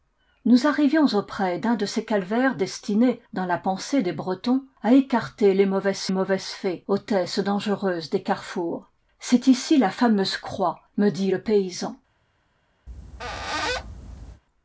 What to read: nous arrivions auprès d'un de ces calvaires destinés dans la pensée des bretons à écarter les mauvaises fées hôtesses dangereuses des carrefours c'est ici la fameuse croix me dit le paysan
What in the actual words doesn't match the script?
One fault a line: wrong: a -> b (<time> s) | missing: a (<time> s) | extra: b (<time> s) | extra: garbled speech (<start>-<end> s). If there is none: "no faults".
extra: mauvaises (6.1 s)